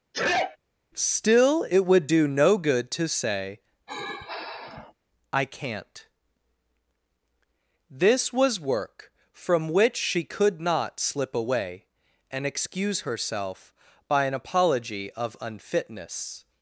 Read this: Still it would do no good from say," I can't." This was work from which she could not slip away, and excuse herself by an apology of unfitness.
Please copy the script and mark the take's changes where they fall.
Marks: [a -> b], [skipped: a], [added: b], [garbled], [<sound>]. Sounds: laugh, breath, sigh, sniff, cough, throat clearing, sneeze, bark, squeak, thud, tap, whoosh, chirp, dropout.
[sneeze] Still it would do no good [from -> to] say," [sigh] I can't." This was work from which she could not slip away, and excuse herself by an apology of unfitness.